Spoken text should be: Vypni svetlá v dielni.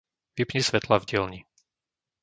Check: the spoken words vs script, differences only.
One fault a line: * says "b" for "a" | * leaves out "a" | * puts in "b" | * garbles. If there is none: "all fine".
all fine